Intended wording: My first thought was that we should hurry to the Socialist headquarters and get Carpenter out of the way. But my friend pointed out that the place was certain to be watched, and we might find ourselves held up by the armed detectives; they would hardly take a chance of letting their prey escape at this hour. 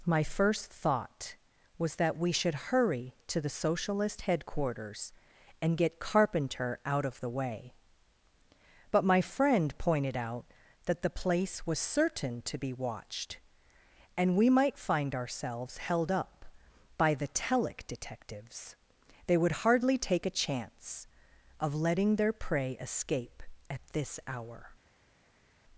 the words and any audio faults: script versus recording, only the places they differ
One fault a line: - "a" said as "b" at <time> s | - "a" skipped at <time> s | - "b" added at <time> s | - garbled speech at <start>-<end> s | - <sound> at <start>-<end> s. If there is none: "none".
- "armed" said as "telic" at 17.3 s